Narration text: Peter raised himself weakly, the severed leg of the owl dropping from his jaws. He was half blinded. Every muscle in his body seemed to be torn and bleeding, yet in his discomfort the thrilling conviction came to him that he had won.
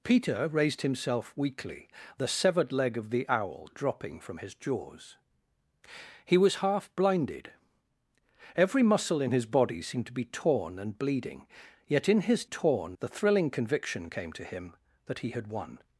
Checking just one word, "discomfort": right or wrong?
wrong